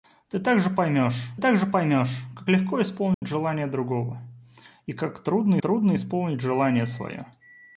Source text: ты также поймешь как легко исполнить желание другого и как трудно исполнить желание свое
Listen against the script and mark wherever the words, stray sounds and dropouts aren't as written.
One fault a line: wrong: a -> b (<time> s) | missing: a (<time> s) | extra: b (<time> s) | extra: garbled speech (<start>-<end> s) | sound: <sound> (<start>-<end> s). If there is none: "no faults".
extra: также поймешь (1.4 s)
sound: dropout (3.1-3.2 s)
extra: трудно (5.6 s)